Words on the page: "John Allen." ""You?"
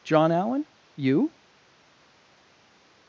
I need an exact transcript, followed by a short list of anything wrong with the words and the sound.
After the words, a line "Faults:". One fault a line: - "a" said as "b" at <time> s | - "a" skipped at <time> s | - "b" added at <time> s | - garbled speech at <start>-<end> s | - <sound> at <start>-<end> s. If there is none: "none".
"John Allen." ""You?"
Faults:
none